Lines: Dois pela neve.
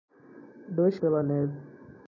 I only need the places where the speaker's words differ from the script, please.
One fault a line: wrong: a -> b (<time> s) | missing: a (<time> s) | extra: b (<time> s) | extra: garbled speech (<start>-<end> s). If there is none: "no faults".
no faults